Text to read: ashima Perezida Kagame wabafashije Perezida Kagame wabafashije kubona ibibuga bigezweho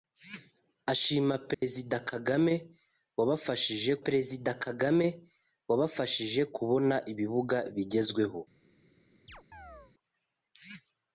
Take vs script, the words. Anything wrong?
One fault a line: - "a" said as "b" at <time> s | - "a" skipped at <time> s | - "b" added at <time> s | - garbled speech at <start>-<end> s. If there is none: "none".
none